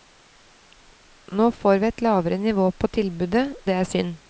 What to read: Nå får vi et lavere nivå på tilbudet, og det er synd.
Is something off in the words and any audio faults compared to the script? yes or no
yes